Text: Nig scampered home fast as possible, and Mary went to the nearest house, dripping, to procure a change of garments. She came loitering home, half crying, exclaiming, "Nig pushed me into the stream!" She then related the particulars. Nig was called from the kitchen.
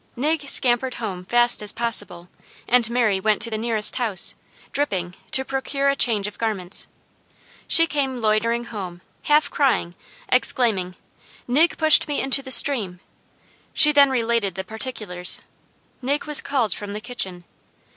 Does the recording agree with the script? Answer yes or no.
yes